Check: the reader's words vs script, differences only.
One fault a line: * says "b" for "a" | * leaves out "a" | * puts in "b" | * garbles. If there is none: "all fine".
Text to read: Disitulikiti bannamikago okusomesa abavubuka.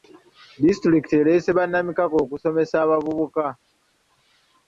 * puts in "ereese"